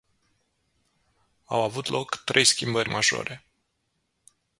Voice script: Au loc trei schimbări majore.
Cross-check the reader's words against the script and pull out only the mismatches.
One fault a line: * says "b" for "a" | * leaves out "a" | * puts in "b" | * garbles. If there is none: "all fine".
* puts in "avut"